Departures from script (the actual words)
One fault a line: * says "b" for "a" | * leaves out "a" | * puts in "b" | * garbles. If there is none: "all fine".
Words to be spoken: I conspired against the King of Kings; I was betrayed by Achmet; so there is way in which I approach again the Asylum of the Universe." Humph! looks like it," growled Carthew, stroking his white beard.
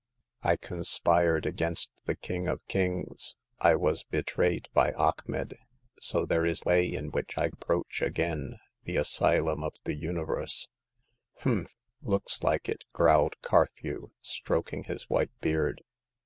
all fine